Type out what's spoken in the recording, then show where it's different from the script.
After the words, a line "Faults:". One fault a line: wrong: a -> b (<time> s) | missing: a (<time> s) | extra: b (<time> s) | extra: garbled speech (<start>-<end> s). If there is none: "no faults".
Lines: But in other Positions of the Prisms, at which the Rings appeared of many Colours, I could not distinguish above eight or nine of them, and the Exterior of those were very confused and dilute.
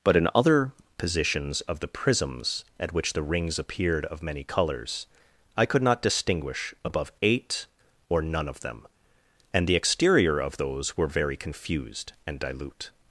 But in other Positions of the Prisms, at which the Rings appeared of many Colours, I could not distinguish above eight or none of them, and the Exterior of those were very confused and dilute.
Faults:
wrong: nine -> none (8.2 s)